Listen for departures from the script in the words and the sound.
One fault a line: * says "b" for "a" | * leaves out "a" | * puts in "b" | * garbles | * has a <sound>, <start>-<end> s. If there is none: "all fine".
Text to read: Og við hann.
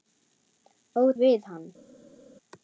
all fine